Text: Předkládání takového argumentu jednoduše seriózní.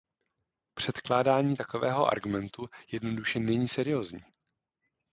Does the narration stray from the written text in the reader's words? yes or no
yes